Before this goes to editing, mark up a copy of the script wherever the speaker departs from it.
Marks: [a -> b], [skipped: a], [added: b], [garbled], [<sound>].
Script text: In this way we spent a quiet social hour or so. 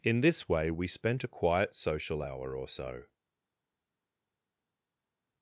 In this way we spent a quiet social hour or so.